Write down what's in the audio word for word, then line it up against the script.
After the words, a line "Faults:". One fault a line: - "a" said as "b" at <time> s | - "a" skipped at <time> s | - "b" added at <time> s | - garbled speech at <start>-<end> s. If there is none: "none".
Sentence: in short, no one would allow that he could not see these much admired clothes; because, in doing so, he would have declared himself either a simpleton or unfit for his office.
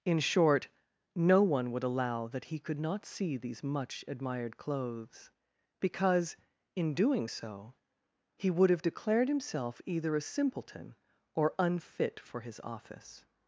in short, no one would allow that he could not see these much admired clothes; because, in doing so, he would have declared himself either a simpleton or unfit for his office.
Faults:
none